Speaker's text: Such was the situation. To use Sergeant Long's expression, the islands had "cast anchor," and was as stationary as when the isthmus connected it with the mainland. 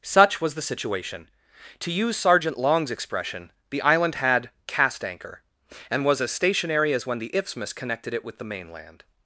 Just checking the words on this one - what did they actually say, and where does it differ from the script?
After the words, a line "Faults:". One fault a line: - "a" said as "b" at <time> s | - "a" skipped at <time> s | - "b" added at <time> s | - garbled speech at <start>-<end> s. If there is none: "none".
Such was the situation. To use Sergeant Long's expression, the island had "cast anchor," and was as stationary as when the isthmus connected it with the mainland.
Faults:
- "islands" said as "island" at 3.8 s